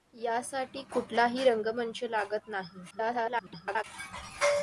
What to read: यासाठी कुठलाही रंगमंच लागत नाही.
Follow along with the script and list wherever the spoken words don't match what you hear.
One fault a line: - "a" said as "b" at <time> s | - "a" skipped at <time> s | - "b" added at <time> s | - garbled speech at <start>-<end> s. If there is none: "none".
- garbled speech at 2.9-3.8 s